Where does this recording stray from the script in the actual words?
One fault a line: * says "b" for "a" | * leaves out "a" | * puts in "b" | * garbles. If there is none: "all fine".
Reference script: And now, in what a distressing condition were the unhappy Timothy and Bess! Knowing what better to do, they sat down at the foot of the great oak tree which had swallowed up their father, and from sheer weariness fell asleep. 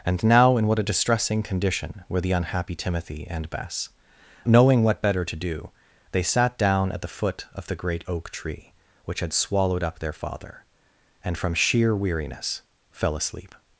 all fine